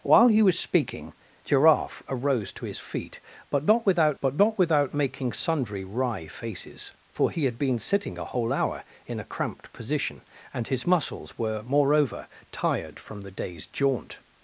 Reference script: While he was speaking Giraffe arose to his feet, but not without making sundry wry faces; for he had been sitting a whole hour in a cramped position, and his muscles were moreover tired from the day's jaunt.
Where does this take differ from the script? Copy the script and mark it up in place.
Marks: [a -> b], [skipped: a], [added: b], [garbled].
While he was speaking Giraffe arose to his feet, but not without [added: but not without] making sundry wry faces; for he had been sitting a whole hour in a cramped position, and his muscles were moreover tired from the day's jaunt.